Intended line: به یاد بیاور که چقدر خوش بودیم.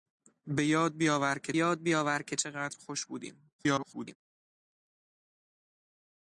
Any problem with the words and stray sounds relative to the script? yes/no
yes